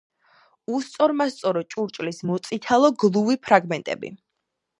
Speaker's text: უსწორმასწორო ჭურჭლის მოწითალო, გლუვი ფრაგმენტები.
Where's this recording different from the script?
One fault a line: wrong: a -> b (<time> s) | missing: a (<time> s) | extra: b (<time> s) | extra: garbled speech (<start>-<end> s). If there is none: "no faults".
no faults